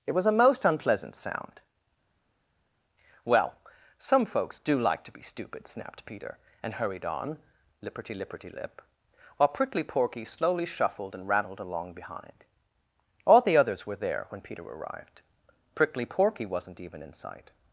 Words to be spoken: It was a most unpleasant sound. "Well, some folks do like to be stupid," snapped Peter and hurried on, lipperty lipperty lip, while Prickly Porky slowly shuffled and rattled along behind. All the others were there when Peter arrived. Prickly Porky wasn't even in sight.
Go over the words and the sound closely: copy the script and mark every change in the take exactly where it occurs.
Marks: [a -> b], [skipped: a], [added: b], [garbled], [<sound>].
It was a most unpleasant sound. "Well, some folks do like to be stupid," snapped Peter and hurried on, lipperty lipperty lip, while Prickly Porky slowly shuffled and rattled along behind. All the others were there when Peter arrived. Prickly Porky wasn't even in sight.